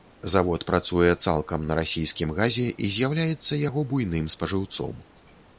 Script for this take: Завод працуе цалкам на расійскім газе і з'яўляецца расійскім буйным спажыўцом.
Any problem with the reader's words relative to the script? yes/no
yes